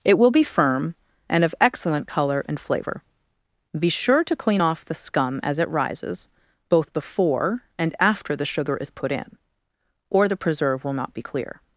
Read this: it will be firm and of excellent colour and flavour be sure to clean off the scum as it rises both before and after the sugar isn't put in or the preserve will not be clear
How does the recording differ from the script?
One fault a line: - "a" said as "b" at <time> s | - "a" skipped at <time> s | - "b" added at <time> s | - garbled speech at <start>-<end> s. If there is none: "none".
- "isn't" said as "is" at 8.8 s